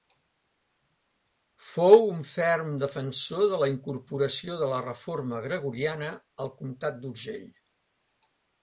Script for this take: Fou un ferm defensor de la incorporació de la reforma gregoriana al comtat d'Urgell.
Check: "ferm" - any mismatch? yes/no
no